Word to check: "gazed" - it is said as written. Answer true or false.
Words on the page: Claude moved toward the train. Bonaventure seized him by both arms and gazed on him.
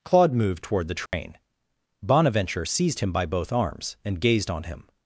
true